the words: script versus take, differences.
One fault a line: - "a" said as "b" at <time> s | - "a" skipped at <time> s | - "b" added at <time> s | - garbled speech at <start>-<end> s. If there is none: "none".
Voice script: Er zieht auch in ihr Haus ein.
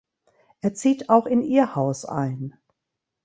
none